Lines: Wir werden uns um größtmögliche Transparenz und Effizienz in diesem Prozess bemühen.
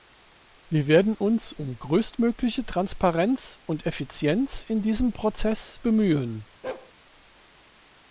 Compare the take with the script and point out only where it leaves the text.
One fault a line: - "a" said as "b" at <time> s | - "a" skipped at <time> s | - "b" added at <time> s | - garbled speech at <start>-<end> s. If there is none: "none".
none